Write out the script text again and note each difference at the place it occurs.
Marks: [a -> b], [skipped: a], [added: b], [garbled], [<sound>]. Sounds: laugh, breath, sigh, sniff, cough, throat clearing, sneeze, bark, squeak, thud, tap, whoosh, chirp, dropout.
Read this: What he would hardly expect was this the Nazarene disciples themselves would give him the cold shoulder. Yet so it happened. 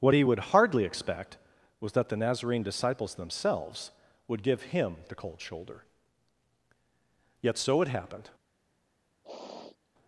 What he would hardly expect was [this -> that] the Nazarene disciples themselves would give him the cold shoulder. Yet so it happened. [sniff]